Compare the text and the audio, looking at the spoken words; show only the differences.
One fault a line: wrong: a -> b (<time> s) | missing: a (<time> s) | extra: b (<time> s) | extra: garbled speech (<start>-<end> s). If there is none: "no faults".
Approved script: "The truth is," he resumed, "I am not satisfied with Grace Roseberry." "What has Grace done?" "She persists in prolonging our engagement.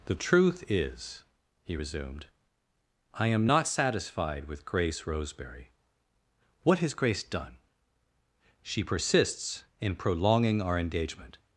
no faults